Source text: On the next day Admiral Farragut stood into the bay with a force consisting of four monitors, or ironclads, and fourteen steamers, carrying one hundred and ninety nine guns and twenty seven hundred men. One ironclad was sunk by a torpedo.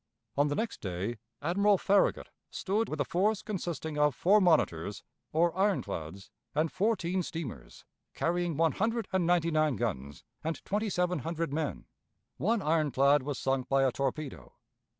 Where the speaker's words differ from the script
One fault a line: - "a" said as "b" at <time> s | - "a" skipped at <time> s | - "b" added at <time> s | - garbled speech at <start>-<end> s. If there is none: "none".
- "into the bay" skipped at 2.9 s